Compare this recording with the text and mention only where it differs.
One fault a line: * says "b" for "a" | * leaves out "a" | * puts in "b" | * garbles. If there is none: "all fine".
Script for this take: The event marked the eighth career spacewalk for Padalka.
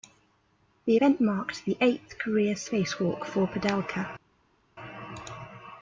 all fine